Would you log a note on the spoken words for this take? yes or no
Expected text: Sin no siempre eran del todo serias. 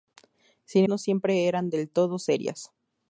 no